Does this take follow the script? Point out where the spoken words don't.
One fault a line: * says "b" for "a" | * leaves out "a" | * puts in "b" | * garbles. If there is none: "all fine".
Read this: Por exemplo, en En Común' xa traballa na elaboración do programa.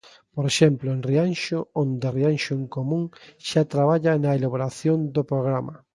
* puts in "Rianxo onde Rianxo"